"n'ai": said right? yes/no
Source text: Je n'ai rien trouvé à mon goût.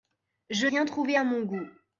no